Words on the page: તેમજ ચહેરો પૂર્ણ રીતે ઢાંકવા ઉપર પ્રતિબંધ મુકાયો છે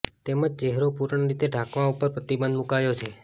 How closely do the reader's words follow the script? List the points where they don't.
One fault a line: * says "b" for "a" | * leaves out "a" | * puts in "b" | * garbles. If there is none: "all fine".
all fine